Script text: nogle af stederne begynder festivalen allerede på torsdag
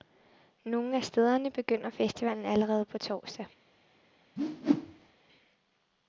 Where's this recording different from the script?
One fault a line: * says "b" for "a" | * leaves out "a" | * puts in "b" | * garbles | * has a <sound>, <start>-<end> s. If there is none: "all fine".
* has a whoosh, 4.4-5.1 s